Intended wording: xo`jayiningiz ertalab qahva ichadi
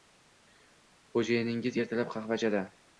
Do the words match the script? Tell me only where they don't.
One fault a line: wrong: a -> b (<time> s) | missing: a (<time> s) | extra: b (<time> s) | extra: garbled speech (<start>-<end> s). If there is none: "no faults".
no faults